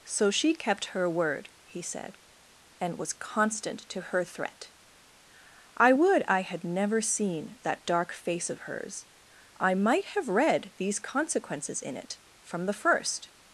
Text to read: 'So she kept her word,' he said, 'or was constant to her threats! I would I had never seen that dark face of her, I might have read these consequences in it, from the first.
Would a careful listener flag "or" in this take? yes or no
yes